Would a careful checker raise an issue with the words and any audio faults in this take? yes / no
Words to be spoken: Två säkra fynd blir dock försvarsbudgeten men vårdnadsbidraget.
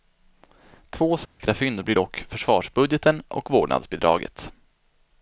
yes